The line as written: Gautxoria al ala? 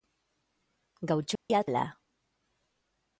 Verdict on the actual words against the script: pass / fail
pass